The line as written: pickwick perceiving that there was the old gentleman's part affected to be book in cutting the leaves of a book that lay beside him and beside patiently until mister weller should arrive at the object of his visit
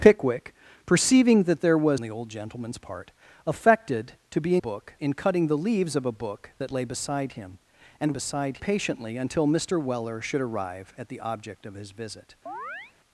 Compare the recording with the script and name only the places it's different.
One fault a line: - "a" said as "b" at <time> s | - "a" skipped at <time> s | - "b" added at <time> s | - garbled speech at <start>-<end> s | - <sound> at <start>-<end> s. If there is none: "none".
- chirp at 12.5-12.9 s